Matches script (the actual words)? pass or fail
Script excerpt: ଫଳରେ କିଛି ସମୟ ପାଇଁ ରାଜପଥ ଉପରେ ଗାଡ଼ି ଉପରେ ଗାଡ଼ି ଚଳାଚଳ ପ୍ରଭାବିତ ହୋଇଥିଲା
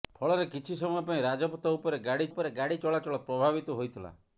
pass